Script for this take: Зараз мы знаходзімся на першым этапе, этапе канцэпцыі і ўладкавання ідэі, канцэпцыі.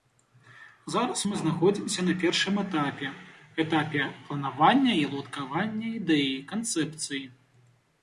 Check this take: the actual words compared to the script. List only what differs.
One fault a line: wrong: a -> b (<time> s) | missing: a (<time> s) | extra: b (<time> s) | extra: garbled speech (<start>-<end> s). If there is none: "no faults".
wrong: канцэпцыі -> планавання (4.3 s)